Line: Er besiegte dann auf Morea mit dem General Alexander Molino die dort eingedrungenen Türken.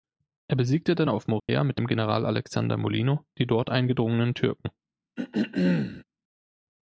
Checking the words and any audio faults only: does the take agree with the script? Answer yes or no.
no